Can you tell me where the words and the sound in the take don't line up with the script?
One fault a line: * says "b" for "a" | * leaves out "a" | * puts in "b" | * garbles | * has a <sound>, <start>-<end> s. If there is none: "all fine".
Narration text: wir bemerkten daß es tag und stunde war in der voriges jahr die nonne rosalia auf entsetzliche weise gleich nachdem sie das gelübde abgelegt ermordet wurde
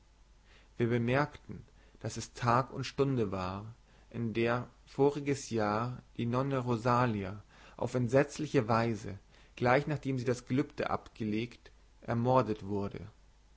all fine